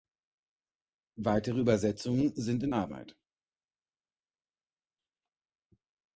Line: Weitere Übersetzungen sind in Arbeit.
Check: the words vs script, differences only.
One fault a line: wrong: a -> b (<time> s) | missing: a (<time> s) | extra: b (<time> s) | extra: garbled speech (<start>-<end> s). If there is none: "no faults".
no faults